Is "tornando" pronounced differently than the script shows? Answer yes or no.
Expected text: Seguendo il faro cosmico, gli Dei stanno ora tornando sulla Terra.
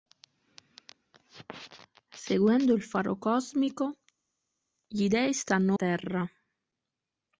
yes